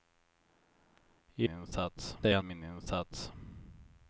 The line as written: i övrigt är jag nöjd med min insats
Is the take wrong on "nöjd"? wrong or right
wrong